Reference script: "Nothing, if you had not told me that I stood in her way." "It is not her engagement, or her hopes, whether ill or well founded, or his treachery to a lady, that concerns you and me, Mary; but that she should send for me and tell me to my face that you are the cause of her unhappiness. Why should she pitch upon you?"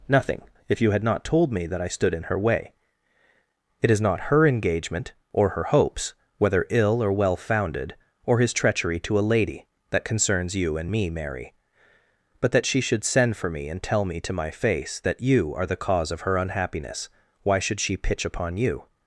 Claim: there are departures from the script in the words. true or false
false